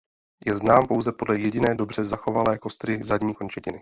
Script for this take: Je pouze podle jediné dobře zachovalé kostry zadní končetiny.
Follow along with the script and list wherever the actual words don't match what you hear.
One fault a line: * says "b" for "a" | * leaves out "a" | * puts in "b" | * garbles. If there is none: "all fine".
* puts in "znám"